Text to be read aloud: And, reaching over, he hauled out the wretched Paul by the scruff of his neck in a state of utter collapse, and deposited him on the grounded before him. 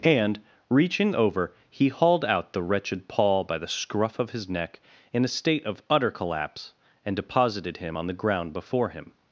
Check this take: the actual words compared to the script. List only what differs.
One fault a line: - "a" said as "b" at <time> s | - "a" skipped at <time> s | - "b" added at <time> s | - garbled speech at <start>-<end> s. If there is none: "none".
- "grounded" said as "ground" at 8.1 s